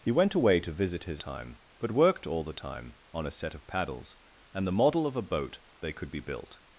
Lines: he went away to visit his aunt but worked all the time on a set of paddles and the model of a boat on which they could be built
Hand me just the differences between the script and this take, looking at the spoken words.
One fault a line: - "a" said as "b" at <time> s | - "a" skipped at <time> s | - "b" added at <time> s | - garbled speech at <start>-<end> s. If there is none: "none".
- "aunt" said as "time" at 1.2 s
- "on which" skipped at 5.6 s